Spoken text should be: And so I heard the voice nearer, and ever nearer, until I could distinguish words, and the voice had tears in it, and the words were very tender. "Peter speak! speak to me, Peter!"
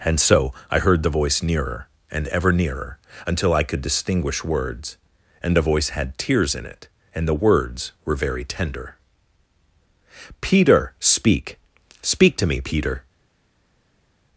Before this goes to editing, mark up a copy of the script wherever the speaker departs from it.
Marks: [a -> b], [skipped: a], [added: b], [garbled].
And so I heard the voice nearer, and ever nearer, until I could distinguish words, and the voice had tears in it, and the words were very tender. "Peter speak! speak to me, Peter!"